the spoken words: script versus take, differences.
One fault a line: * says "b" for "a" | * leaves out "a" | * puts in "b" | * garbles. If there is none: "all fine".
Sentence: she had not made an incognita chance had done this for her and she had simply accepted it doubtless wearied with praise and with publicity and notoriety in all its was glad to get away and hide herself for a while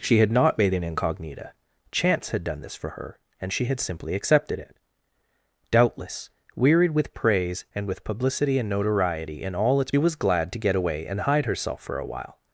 all fine